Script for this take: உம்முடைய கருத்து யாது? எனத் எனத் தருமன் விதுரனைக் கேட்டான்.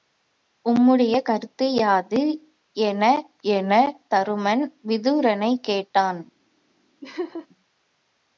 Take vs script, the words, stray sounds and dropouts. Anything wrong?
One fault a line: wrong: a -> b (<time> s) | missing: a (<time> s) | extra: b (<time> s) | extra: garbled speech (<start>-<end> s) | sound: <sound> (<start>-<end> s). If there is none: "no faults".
sound: laugh (7.0-7.5 s)